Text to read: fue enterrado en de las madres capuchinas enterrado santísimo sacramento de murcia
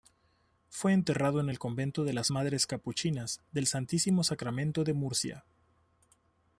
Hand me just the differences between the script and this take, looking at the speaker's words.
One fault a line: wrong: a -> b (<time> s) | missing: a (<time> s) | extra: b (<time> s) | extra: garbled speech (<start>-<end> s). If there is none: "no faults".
extra: el convento (1.5 s)
wrong: enterrado -> del (3.5 s)